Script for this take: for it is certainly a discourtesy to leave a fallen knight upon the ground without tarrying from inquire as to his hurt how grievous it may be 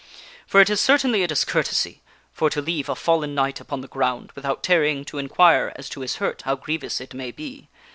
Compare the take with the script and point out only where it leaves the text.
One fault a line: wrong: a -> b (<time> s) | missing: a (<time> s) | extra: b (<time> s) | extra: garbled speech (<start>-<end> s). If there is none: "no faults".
extra: for (2.3 s)
wrong: from -> to (5.0 s)